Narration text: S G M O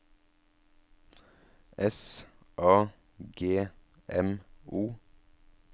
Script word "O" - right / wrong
right